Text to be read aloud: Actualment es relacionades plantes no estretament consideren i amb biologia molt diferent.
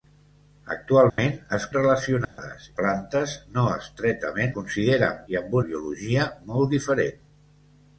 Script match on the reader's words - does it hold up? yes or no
yes